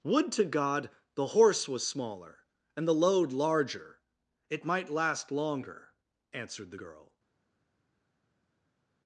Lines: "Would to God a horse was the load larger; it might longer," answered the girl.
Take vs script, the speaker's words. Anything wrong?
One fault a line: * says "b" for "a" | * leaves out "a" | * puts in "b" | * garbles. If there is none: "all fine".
* says "the" for "a"
* puts in "smaller and"
* puts in "last"